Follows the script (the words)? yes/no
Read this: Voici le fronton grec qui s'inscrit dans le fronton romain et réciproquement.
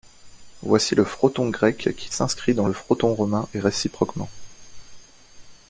yes